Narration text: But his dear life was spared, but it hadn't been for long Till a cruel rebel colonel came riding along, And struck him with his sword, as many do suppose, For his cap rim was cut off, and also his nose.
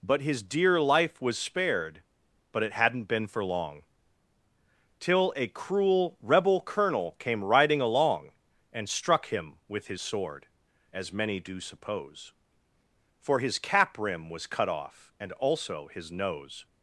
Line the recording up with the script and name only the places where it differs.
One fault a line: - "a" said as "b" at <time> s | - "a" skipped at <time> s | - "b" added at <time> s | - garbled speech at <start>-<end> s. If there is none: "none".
none